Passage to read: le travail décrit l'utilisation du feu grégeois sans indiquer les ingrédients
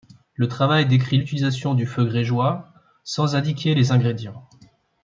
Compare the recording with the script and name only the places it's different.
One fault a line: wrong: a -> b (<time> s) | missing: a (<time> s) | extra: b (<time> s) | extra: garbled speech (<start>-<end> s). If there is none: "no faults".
no faults